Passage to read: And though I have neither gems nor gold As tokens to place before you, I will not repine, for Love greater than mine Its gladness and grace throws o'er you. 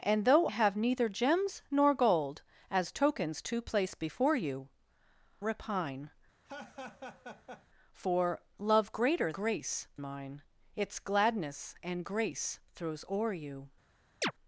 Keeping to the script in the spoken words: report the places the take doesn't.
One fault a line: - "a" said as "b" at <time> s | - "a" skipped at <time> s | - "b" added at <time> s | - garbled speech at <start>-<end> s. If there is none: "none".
- "I" skipped at 0.5 s
- "I will not" skipped at 4.7 s
- "than" said as "grace" at 9.3 s